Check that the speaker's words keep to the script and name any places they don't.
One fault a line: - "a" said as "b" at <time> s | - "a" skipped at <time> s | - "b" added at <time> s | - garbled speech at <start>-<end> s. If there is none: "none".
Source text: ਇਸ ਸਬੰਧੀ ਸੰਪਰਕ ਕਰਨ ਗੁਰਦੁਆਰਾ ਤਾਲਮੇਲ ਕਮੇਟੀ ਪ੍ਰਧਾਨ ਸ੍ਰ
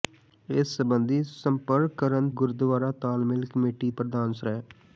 none